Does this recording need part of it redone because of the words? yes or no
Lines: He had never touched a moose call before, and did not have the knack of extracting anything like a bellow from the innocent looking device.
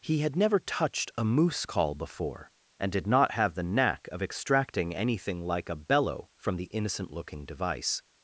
no